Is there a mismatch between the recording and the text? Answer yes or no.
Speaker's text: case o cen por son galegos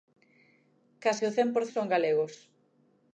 no